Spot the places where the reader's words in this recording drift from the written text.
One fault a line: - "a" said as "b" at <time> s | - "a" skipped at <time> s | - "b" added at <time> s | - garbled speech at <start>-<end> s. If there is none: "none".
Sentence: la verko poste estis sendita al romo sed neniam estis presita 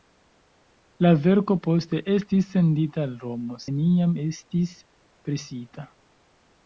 - "sed" skipped at 3.6 s